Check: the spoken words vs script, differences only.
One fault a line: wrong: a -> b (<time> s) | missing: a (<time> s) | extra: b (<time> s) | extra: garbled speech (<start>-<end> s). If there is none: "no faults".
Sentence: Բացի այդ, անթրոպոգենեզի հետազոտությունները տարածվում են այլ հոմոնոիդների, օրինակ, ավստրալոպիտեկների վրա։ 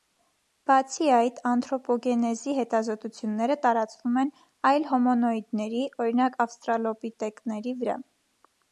no faults